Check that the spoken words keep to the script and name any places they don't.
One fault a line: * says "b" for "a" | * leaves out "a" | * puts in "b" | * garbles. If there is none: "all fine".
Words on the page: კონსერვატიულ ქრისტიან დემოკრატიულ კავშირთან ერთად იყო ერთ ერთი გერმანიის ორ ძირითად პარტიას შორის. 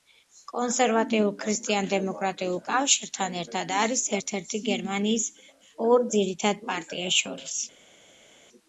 * says "არის" for "იყო"